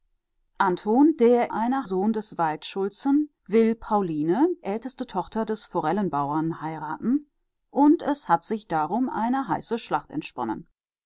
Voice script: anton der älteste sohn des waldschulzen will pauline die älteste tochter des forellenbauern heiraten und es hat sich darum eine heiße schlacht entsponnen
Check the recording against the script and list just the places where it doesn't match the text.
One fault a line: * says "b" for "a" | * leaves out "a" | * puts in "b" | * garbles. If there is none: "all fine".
* says "eine" for "älteste"
* leaves out "die"